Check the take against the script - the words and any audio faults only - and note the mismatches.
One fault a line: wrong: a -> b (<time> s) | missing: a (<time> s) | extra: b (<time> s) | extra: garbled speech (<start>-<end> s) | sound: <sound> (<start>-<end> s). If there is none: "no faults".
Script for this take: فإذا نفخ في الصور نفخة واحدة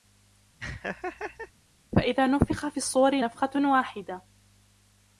sound: laugh (0.6-1.5 s)